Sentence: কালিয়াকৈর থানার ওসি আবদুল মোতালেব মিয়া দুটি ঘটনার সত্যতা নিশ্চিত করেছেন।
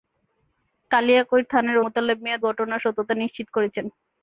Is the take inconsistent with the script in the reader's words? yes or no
yes